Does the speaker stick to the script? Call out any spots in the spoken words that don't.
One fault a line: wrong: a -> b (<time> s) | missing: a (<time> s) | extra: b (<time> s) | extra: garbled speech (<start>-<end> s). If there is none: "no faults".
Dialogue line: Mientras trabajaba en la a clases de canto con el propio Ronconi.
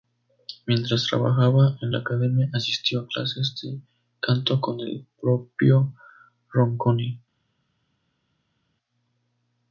extra: academia asistió (2.0 s)